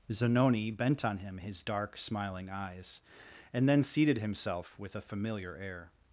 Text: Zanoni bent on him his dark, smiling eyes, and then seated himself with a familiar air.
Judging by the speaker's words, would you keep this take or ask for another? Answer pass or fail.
pass